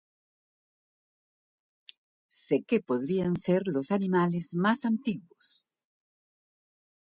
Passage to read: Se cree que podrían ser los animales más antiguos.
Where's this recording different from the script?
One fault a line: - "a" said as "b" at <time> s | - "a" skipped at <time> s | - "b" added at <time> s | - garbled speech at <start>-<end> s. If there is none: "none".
- "cree" skipped at 2.6 s